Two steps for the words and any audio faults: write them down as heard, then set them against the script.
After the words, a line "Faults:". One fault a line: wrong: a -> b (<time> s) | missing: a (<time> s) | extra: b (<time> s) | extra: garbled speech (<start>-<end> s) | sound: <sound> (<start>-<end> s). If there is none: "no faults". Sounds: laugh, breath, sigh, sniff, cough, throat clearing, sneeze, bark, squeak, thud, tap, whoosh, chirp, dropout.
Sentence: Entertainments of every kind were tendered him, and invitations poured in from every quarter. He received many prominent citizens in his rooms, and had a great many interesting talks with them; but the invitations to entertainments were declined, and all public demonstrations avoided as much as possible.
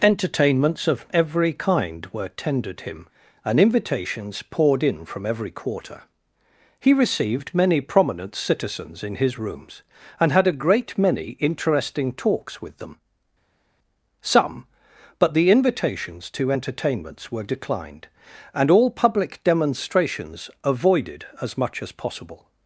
Entertainments of every kind were tendered him, and invitations poured in from every quarter. He received many prominent citizens in his rooms, and had a great many interesting talks with them; some but the invitations to entertainments were declined, and all public demonstrations avoided as much as possible.
Faults:
extra: some (14.2 s)